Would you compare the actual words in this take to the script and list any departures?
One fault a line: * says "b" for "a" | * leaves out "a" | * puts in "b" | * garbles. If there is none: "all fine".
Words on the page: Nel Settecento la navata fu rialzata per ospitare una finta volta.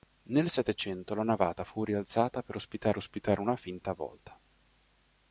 * puts in "ospitare"